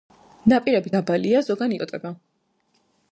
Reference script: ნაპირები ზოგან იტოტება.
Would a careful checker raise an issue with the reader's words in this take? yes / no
yes